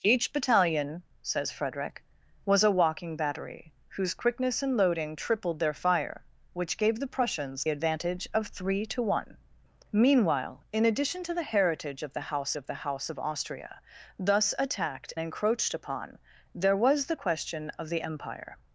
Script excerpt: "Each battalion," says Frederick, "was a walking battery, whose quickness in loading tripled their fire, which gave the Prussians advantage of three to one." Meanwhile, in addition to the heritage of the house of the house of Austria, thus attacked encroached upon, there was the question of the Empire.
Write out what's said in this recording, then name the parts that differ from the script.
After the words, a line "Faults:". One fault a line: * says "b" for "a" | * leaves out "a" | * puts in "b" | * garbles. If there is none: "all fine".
"Each battalion," says Frederick, "was a walking battery, whose quickness in loading tripled their fire, which gave the Prussians advantage of three to one." Meanwhile, in addition to the heritage of the house of the house of Austria, thus attacked encroached upon, there was the question of the Empire.
Faults:
all fine